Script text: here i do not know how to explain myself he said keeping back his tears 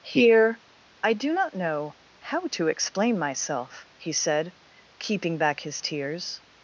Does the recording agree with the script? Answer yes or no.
yes